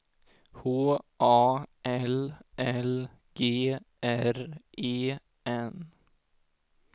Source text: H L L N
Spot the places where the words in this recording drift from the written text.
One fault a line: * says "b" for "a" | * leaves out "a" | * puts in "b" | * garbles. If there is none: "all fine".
* puts in "A"
* puts in "G R E"